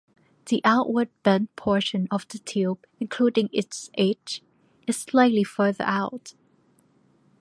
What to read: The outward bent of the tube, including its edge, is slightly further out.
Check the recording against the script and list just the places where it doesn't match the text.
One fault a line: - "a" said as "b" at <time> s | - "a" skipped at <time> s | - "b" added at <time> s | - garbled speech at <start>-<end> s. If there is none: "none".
- "portion" added at 1.6 s